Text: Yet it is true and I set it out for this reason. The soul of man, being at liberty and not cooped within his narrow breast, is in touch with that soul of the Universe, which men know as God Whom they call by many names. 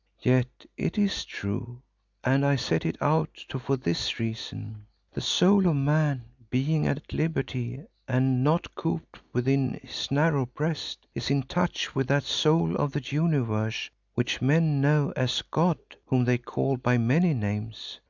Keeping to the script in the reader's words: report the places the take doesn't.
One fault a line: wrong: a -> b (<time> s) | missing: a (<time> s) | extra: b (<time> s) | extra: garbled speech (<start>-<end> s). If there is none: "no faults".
no faults